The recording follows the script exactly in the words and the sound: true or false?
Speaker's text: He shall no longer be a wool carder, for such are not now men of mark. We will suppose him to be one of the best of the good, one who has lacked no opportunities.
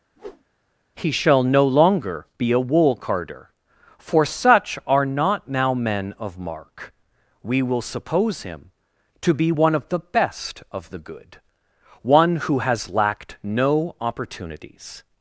false